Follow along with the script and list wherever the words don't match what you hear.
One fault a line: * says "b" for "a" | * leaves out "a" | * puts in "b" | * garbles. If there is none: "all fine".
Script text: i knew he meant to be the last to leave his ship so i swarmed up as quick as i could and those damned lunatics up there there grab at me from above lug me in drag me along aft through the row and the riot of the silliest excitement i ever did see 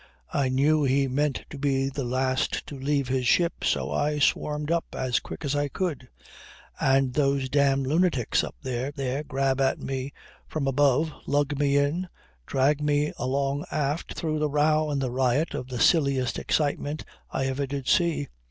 all fine